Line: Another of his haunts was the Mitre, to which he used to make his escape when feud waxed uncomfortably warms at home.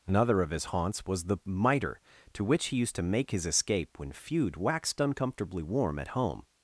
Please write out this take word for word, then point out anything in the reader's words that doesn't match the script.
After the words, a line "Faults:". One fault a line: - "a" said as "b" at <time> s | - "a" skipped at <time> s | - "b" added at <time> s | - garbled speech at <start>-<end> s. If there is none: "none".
Another of his haunts was the Mitre, to which he used to make his escape when feud waxed uncomfortably warm at home.
Faults:
- "warms" said as "warm" at 5.6 s